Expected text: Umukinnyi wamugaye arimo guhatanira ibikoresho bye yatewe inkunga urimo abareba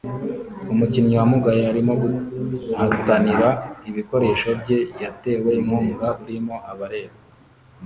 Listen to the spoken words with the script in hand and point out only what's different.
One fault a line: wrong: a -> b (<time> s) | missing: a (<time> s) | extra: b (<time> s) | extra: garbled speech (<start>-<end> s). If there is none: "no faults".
no faults